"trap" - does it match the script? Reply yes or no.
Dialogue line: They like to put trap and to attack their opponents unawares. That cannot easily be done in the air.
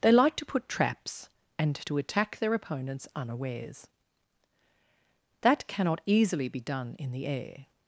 no